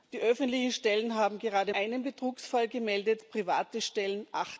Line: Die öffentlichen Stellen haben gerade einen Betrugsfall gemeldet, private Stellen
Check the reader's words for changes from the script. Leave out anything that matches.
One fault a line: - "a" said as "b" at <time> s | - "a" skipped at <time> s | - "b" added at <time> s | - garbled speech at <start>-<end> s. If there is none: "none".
none